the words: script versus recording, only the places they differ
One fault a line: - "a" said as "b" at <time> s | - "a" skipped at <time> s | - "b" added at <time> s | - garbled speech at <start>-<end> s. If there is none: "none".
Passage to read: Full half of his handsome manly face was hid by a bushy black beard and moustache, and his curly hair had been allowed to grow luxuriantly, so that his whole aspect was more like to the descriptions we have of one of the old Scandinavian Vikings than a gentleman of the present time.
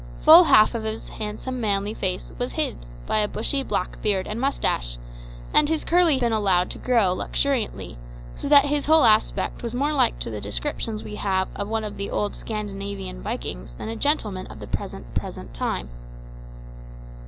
- "hair had" skipped at 6.2 s
- "present" added at 15.1 s